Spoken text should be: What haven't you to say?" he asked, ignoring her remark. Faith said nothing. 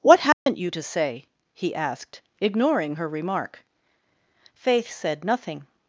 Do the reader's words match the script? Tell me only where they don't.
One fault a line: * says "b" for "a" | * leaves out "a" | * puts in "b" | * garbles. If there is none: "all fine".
all fine